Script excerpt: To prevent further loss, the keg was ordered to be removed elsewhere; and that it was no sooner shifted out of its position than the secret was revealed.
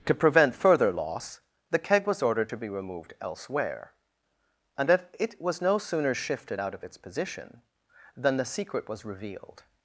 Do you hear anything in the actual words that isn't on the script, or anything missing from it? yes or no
no